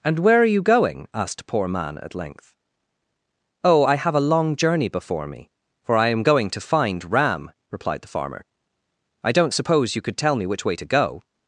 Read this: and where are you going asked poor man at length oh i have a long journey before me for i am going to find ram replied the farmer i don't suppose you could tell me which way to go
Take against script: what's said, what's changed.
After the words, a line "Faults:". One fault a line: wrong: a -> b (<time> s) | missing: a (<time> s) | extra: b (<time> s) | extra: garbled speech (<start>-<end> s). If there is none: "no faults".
and where are you going asked poor man at length oh i have a long journey before me for i am going to find ram replied the farmer i don't suppose you could tell me which way to go
Faults:
no faults